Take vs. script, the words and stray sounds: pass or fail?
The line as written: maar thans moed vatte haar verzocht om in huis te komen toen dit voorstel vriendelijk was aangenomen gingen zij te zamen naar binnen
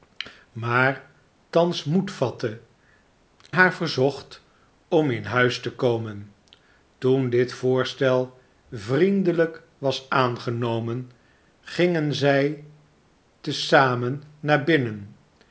pass